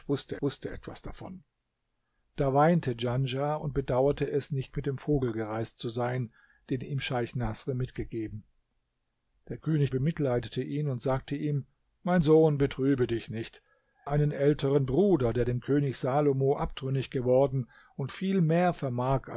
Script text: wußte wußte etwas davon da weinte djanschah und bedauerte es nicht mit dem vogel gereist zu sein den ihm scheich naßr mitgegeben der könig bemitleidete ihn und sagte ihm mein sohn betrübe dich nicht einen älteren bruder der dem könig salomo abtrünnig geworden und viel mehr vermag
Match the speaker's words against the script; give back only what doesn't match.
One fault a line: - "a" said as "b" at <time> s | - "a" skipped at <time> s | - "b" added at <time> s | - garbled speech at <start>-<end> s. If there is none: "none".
none